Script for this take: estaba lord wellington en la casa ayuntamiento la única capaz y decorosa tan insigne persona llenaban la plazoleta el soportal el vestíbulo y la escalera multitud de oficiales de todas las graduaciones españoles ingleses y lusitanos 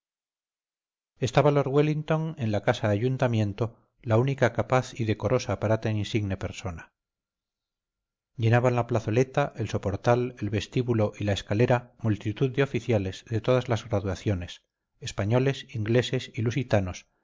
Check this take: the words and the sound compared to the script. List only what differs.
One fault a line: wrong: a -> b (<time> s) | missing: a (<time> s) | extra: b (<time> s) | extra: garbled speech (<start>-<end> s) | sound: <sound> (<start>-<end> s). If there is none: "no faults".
extra: para (5.6 s)